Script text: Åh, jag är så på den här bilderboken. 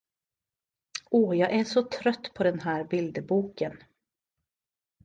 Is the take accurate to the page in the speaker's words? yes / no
no